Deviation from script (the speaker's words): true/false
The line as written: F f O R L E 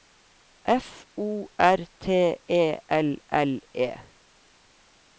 true